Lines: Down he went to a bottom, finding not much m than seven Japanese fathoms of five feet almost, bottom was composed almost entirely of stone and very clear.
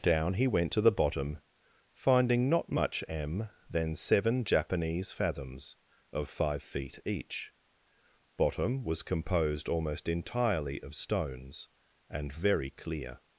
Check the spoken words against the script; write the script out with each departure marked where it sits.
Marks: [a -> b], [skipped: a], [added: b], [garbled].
Down he went to [a -> the] bottom, finding not much m than seven Japanese fathoms of five feet [almost, -> each] bottom was composed almost entirely of [stone -> stones] and very clear.